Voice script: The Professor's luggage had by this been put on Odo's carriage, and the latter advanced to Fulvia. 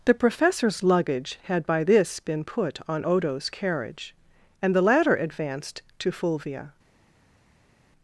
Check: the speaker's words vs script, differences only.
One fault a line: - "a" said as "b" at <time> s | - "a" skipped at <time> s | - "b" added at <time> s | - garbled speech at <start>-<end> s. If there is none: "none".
none